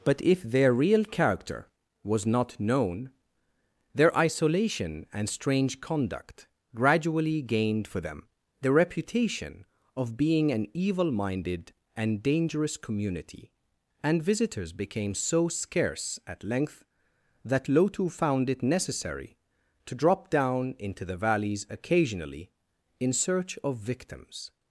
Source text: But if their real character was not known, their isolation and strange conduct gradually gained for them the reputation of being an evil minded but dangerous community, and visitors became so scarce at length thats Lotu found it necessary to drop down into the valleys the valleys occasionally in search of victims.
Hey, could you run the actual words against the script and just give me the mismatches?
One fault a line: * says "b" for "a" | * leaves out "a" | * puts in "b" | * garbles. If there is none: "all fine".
* says "and" for "but"
* says "that" for "thats"
* leaves out "the valleys"